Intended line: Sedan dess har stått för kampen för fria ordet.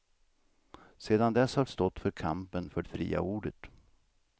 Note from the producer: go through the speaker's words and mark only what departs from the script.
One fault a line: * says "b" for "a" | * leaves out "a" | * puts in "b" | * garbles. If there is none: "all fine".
all fine